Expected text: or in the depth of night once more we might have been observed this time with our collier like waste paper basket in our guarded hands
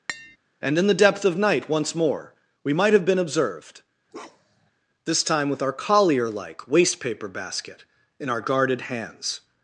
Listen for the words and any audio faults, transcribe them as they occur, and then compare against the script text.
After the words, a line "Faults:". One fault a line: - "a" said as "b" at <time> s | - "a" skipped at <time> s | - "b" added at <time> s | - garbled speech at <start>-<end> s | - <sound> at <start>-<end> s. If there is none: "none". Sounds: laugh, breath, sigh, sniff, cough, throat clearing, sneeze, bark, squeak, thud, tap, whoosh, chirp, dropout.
and in the depth of night once more we might have been observed this time with our collier like waste paper basket in our guarded hands
Faults:
- tap at 0.1-0.4 s
- "or" said as "and" at 0.6 s
- bark at 4.1-4.7 s